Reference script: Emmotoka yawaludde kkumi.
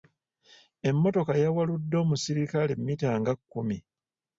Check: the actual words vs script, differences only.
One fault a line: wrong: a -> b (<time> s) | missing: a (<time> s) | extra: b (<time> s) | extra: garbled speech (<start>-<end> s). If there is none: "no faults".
extra: omusirikale mmita nga (2.0 s)